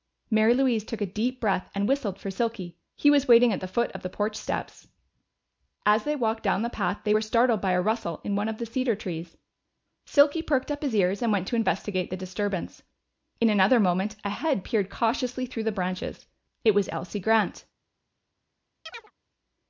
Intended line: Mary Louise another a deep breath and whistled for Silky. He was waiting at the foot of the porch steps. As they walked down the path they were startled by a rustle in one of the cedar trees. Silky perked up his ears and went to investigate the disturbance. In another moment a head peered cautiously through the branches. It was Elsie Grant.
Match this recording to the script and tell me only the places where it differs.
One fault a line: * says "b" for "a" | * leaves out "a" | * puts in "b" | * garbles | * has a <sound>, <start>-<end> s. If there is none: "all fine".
* says "took" for "another"
* has a chirp, 18.9-19.1 s